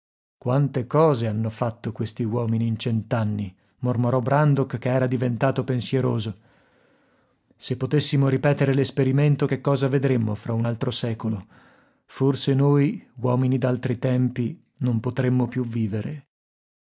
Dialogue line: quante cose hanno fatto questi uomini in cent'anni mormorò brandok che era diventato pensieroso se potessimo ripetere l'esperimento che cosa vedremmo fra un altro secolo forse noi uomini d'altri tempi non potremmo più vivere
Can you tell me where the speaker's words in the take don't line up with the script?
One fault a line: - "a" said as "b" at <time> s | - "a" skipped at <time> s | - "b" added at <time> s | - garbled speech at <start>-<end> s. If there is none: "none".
none